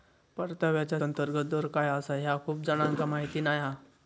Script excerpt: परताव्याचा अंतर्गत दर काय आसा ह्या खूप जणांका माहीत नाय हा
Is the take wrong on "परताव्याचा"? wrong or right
right